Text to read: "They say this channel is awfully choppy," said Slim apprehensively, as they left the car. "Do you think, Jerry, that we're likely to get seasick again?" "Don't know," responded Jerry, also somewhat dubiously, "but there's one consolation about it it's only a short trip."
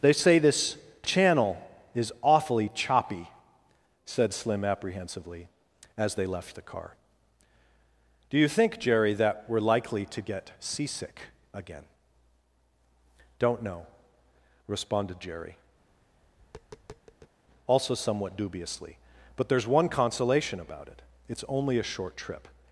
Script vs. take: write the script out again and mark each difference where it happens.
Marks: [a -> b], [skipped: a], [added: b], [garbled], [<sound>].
"They say this channel is awfully choppy," said Slim apprehensively, as they left the car. "Do you think, Jerry, that we're likely to get seasick again?" "Don't know," responded Jerry, [tap] also somewhat dubiously, "but there's one consolation about it it's only a short trip."